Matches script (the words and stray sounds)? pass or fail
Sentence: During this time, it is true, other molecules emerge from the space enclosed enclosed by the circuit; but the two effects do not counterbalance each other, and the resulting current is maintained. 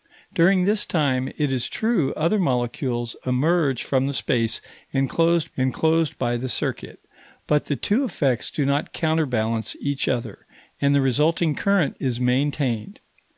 pass